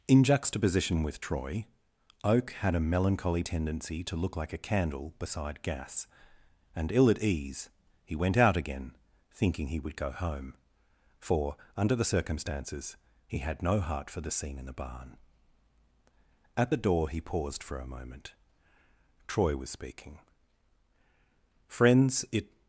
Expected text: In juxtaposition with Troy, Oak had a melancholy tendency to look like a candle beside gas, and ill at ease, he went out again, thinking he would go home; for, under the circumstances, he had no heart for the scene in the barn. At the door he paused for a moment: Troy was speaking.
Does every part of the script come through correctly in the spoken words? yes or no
no